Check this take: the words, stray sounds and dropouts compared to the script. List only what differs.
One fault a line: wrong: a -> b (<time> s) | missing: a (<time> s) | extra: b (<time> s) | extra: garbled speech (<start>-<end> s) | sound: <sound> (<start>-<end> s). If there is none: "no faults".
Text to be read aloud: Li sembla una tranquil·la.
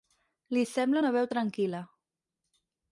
extra: veu (1.2 s)